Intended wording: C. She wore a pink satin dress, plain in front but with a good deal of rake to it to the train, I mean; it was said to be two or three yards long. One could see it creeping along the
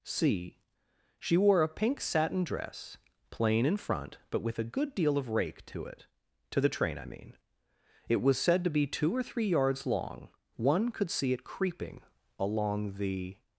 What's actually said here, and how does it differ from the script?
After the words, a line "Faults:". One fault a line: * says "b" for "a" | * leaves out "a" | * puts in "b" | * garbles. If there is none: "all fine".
C. She wore a pink satin dress, plain in front but with a good deal of rake to it to the train, I mean; it was said to be two or three yards long. One could see it creeping along the
Faults:
all fine